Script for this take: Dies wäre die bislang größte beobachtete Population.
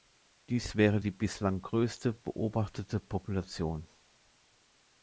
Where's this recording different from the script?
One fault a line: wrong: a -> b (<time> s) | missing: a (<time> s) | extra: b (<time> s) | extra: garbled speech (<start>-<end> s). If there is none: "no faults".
no faults